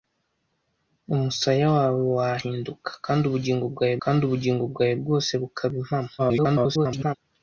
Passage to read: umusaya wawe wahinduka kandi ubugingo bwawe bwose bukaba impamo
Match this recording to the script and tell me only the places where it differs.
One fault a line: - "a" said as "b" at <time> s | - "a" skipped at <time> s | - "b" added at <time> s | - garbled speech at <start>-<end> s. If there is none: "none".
- "kandi ubugingo bwawe" added at 4.0 s
- garbled speech at 6.2-7.2 s